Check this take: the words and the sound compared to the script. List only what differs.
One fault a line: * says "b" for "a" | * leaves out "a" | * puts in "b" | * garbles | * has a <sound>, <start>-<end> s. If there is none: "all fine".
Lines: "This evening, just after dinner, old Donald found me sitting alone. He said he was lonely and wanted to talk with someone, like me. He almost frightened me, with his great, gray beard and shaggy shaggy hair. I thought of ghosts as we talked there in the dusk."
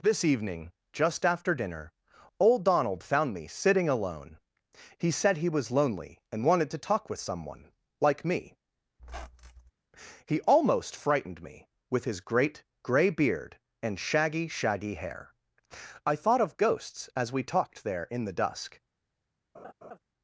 * has a squeak, 9.0-9.7 s
* has a laugh, 19.5-20.0 s